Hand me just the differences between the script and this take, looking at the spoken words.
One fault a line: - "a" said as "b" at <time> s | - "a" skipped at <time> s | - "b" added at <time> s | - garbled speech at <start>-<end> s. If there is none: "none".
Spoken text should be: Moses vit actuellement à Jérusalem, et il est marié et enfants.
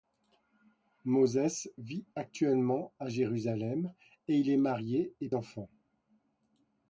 none